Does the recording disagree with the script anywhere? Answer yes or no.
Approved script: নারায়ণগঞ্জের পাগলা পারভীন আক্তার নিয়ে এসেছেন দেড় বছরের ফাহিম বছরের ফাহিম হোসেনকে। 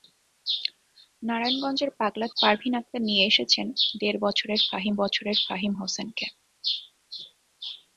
no